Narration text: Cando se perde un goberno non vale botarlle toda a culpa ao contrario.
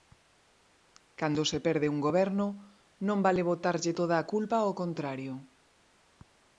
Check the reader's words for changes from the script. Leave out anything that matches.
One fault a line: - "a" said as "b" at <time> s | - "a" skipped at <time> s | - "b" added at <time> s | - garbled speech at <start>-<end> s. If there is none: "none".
none